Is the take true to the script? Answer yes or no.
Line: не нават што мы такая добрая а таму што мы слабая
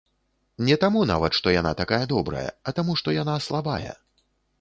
no